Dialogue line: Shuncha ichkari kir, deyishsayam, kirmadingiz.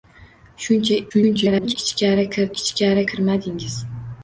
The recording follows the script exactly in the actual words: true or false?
false